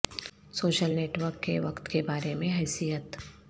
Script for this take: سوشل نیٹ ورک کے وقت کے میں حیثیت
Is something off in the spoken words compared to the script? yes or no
yes